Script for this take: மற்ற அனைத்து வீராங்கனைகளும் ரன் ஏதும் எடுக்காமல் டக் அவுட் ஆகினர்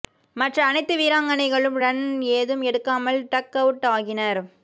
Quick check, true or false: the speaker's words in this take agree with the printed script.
true